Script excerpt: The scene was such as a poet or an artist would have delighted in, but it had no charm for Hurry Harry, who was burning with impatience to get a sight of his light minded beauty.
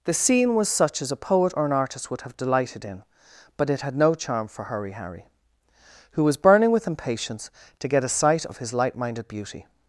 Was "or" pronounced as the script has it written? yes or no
yes